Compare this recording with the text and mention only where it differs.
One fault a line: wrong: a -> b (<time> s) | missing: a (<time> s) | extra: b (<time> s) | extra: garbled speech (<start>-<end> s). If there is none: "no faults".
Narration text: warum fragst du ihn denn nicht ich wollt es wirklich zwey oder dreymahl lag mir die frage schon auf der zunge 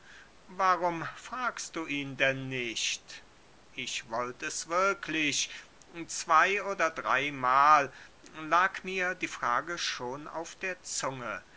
no faults